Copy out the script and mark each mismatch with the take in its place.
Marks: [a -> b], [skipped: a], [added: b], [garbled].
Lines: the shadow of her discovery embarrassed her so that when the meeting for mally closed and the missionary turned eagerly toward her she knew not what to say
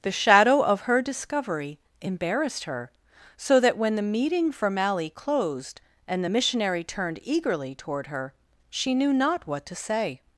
the shadow of her discovery embarrassed her so that when the meeting for mally closed and the missionary turned eagerly toward her she knew not what to say